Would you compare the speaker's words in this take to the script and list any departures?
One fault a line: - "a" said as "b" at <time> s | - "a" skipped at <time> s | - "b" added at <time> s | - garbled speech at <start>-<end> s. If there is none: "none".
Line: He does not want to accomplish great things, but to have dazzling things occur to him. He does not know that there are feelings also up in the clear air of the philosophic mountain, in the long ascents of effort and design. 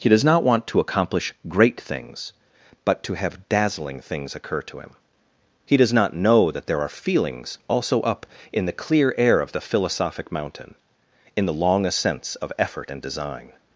none